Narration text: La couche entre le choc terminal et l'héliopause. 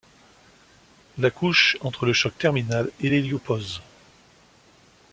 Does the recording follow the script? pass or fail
pass